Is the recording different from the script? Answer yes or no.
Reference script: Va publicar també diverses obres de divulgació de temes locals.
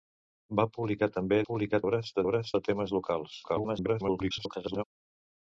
yes